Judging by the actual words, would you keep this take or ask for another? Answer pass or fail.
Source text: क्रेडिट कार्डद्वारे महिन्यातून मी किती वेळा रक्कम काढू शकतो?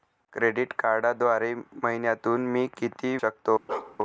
fail